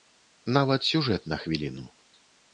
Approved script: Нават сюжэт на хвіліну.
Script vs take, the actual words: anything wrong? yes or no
no